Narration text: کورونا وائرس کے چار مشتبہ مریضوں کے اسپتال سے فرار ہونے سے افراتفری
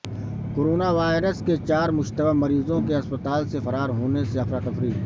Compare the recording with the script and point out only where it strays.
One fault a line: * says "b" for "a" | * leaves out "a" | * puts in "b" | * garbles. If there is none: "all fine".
all fine